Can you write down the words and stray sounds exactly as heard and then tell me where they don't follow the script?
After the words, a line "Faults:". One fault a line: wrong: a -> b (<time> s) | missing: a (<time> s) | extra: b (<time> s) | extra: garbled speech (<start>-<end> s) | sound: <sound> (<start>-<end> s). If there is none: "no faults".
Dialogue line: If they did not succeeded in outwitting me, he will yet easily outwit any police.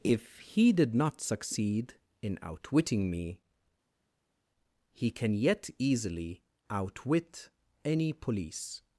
If he did not succeed in outwitting me, he can yet easily outwit any police.
Faults:
wrong: they -> he (0.4 s)
wrong: succeeded -> succeed (1.2 s)
wrong: will -> can (5.1 s)